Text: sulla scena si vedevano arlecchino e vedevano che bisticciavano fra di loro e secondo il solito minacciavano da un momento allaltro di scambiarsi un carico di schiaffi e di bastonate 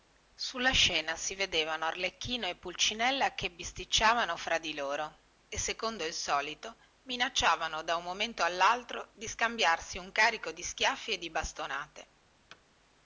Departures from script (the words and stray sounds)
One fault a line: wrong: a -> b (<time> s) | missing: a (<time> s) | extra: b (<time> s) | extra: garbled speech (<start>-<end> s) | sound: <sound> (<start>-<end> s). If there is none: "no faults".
wrong: vedevano -> pulcinella (2.6 s)
sound: thud (12.5-12.6 s)